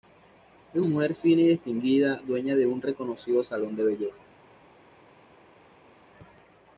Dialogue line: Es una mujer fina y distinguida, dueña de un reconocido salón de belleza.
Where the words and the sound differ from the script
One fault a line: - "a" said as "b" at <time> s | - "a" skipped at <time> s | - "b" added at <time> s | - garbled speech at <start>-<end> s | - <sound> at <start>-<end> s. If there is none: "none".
- "una" skipped at 0.8 s